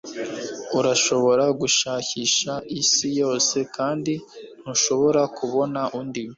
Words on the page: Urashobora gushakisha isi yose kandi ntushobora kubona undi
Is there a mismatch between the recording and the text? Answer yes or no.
no